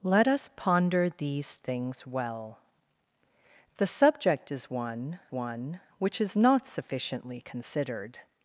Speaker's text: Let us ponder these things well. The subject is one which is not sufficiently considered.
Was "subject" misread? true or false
false